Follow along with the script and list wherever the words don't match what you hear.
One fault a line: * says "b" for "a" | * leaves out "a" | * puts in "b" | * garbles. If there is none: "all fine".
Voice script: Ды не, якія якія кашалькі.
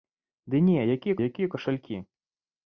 all fine